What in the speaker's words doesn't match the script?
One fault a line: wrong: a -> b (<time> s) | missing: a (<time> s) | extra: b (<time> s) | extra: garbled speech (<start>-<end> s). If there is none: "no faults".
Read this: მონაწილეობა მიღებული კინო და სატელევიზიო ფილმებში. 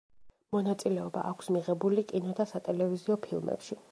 extra: აქვს (1.3 s)